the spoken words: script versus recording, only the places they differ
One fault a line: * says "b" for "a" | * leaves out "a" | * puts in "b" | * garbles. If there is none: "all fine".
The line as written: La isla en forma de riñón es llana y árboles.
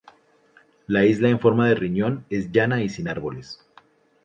* puts in "sin"